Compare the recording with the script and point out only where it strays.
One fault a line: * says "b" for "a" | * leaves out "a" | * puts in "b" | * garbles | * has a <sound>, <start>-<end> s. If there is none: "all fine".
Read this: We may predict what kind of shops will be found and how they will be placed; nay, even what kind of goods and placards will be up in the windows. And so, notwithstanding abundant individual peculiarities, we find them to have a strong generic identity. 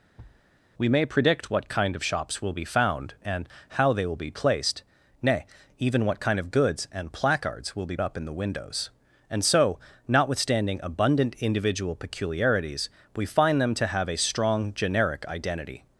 * has a thud, 0.2-0.4 s